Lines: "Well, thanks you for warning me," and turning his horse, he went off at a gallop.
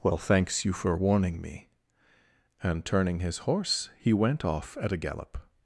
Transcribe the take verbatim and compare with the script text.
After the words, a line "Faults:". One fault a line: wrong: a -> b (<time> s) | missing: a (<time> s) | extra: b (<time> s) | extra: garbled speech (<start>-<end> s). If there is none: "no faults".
"Well, thanks you for warning me," and turning his horse, he went off at a gallop.
Faults:
no faults